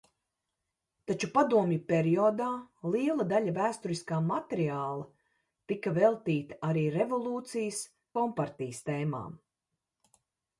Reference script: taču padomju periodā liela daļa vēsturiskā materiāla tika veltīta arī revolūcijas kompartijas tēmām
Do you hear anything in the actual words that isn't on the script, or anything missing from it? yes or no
no